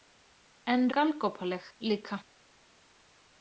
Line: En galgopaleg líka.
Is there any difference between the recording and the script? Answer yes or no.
no